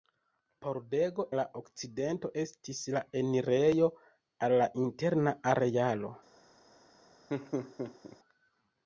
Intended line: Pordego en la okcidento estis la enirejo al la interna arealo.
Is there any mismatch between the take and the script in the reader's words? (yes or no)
yes